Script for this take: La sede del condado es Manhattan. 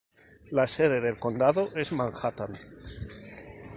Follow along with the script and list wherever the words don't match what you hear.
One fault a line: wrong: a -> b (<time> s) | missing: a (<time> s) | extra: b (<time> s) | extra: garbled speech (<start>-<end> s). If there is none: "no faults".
no faults